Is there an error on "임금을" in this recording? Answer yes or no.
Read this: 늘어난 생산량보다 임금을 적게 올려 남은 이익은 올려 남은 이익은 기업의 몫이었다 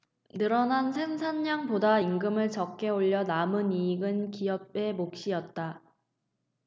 no